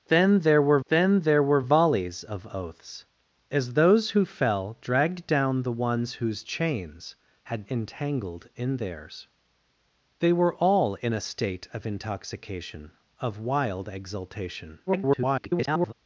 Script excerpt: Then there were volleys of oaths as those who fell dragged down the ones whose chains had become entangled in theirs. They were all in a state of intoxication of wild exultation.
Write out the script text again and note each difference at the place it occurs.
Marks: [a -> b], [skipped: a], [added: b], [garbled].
Then there were [added: then there were] volleys of oaths as those who fell dragged down the ones whose chains had [skipped: become] entangled in theirs. They were all in a state of intoxication of wild exultation. [garbled]